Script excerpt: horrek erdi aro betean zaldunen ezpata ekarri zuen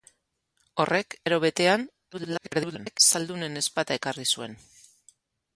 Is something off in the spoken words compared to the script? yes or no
yes